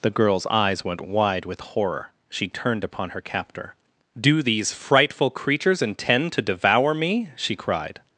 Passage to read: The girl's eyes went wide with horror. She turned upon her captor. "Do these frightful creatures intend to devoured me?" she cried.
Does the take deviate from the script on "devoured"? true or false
true